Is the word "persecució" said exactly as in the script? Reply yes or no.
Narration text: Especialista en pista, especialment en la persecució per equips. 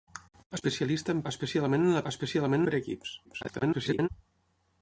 no